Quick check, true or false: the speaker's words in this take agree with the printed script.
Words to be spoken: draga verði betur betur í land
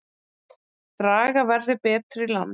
false